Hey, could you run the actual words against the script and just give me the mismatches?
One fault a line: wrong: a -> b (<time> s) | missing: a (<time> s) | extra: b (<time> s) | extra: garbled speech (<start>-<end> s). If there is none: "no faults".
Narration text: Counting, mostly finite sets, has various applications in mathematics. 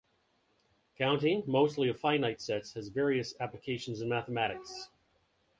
extra: of (1.9 s)